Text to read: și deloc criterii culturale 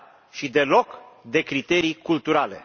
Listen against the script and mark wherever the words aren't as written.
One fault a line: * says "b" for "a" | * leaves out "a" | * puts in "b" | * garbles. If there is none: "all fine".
* puts in "de"